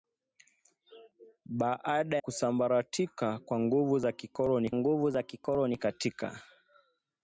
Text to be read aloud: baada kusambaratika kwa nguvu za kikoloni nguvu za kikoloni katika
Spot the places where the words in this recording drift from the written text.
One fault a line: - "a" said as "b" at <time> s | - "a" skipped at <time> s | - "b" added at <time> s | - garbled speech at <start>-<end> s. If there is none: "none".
none